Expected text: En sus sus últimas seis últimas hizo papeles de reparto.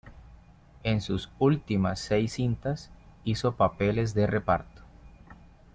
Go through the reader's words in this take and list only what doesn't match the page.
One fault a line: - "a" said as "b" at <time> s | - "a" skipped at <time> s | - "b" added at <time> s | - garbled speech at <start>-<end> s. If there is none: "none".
- "sus" skipped at 1.3 s
- "últimas" said as "cintas" at 2.3 s